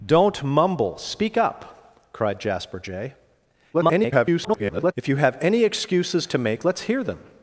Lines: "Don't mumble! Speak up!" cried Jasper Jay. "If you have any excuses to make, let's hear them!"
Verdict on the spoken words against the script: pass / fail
fail